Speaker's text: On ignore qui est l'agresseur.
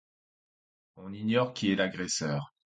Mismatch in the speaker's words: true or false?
false